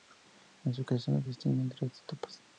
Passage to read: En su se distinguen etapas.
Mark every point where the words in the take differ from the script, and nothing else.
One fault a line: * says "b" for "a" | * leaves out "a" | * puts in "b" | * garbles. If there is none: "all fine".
* puts in "creación"
* puts in "tres"